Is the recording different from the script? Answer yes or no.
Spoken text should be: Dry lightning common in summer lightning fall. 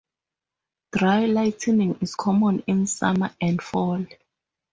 yes